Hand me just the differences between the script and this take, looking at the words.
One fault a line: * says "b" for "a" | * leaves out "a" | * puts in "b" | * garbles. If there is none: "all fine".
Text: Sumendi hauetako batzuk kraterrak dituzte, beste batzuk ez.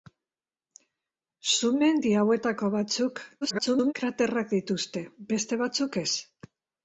* garbles